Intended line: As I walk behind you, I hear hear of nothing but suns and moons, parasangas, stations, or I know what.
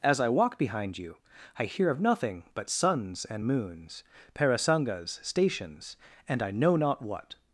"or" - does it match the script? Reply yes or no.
no